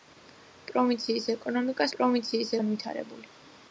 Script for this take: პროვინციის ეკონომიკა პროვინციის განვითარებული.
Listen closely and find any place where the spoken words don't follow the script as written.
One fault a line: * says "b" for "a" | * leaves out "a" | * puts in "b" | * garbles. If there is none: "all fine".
all fine